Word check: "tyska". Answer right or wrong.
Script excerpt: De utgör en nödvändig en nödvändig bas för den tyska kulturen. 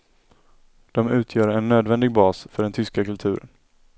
right